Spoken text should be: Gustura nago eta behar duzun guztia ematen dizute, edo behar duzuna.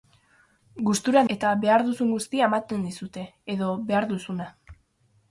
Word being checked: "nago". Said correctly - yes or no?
no